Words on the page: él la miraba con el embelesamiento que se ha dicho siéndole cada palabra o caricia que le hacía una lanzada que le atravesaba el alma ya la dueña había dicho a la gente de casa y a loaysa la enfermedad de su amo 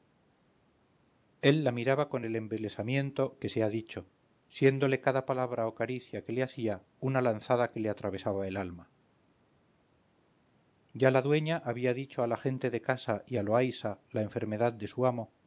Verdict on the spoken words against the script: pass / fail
pass